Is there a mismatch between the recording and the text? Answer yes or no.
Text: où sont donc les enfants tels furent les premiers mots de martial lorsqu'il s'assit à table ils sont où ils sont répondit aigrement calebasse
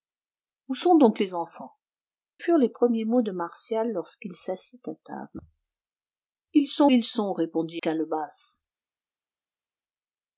yes